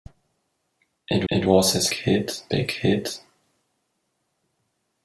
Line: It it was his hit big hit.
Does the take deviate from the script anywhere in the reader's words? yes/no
no